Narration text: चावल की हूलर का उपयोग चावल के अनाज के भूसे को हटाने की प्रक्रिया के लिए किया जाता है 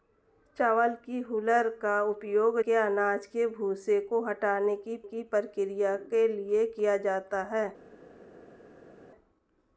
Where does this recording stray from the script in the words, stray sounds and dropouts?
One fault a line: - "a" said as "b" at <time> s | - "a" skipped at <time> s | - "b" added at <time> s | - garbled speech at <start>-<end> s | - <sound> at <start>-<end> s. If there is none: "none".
- "चावल" skipped at 2.6 s
- "की" added at 5.0 s